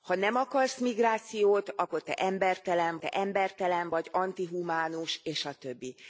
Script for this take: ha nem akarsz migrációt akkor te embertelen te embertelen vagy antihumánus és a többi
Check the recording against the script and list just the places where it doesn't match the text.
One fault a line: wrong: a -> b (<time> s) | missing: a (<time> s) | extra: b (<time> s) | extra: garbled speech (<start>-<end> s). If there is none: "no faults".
no faults